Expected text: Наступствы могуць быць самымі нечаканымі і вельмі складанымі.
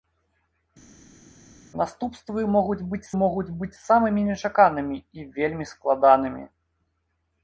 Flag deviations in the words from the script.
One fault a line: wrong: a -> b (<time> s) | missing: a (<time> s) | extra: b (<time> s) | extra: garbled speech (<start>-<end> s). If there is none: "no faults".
extra: могуць быць (3.2 s)